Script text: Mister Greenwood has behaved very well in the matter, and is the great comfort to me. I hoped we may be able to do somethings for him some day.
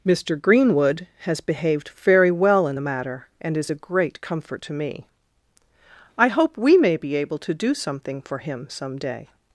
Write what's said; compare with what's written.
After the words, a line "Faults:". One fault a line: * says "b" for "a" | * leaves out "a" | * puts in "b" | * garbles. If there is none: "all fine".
Mister Greenwood has behaved very well in the matter, and is a great comfort to me. I hope we may be able to do something for him some day.
Faults:
* says "a" for "the"
* says "hope" for "hoped"
* says "something" for "somethings"